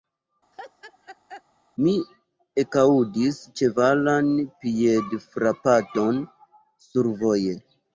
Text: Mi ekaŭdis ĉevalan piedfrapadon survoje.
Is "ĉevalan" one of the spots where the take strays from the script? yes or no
no